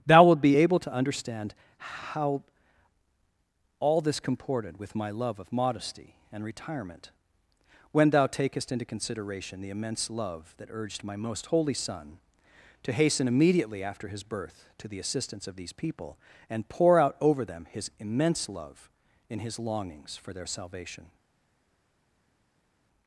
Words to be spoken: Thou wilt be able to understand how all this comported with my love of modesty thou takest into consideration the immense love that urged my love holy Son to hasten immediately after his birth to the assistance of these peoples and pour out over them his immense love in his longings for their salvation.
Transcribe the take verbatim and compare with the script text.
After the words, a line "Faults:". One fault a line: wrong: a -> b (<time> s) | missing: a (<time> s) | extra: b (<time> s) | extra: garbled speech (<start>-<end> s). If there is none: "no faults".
Thou wilt be able to understand how all this comported with my love of modesty and retirement, when thou takest into consideration the immense love that urged my most holy Son to hasten immediately after his birth to the assistance of these people and pour out over them his immense love in his longings for their salvation.
Faults:
extra: and retirement when (6.3 s)
wrong: love -> most (11.2 s)
wrong: peoples -> people (15.7 s)